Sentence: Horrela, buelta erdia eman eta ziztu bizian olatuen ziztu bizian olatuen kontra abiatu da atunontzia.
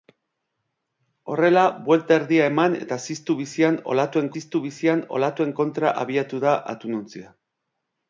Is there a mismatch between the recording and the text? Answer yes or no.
no